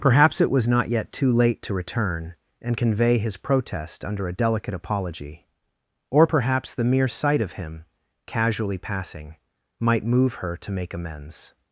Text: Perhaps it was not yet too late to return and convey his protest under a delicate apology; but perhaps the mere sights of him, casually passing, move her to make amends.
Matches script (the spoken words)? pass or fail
fail